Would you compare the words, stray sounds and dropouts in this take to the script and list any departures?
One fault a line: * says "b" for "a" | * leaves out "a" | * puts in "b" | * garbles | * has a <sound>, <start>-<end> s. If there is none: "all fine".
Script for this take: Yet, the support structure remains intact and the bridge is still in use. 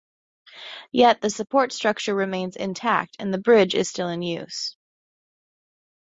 all fine